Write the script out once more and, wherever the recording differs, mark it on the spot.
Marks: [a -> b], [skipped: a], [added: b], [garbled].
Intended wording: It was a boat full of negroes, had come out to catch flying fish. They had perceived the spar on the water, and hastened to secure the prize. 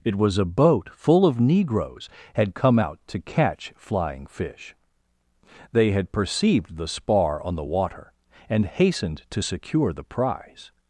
It was a boat full of negroes, had come out to catch flying fish. They had perceived the spar on the water, and hastened to secure the prize.